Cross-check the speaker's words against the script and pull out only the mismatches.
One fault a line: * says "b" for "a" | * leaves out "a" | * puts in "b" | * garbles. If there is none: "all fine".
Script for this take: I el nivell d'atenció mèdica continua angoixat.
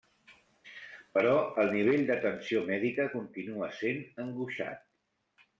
* says "Però" for "I"
* puts in "sent"